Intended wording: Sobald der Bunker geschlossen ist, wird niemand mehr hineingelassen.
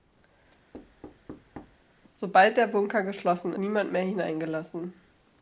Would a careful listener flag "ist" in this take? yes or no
yes